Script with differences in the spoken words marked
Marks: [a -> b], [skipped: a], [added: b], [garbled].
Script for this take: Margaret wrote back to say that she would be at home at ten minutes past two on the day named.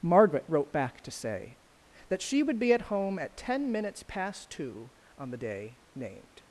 Margaret wrote back to say that she would be at home at ten minutes past two on the day named.